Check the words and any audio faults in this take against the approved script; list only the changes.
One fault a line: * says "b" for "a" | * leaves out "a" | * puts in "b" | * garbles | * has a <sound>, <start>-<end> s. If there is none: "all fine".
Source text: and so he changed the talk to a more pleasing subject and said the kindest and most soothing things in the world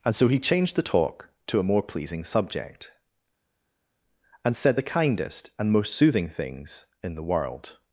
all fine